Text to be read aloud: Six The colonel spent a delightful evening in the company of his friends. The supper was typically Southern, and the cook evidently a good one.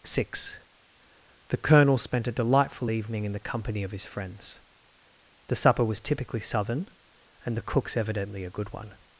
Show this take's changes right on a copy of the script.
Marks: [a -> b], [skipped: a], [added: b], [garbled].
Six The colonel spent a delightful evening in the company of his friends. The supper was typically Southern, and the [cook -> cooks] evidently a good one.